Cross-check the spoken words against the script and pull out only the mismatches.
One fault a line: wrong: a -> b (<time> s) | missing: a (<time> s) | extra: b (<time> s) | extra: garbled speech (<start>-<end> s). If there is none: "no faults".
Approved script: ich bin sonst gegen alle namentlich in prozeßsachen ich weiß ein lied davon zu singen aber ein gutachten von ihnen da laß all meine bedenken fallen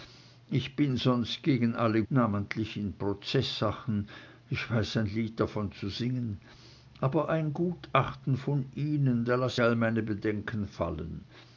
no faults